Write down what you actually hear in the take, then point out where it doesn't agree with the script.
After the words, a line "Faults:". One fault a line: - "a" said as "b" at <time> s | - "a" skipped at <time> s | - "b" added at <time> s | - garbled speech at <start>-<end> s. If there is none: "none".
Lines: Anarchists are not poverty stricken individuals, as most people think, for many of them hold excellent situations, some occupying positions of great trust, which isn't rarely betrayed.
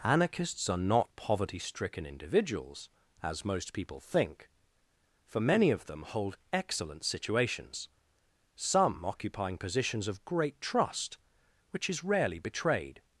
Anarchists are not poverty stricken individuals, as most people think, for many of them hold excellent situations, some occupying positions of great trust, which is rarely betrayed.
Faults:
- "isn't" said as "is" at 11.9 s